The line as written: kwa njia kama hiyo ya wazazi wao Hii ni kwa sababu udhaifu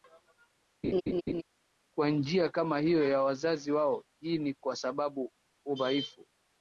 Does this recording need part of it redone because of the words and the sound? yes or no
yes